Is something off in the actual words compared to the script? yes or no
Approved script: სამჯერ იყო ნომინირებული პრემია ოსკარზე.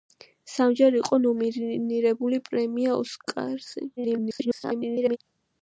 yes